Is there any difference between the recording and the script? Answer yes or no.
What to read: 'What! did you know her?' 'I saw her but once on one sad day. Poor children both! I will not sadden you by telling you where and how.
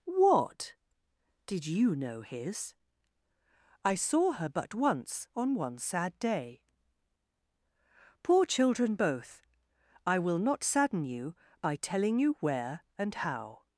yes